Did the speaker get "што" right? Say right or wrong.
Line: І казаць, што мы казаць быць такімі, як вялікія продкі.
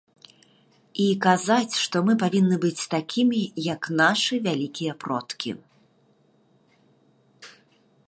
right